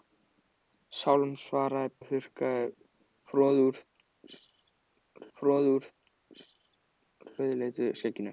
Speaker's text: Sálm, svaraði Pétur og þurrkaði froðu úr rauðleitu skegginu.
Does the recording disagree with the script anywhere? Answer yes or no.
yes